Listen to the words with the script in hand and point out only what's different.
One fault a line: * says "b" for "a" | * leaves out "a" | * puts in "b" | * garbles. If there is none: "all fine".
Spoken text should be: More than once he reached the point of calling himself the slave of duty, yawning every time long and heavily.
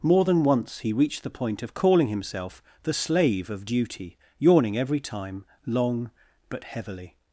* says "but" for "and"